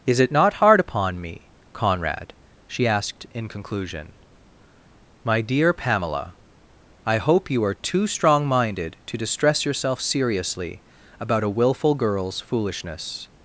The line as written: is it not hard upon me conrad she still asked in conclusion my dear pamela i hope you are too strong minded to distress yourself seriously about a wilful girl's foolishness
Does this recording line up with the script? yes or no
no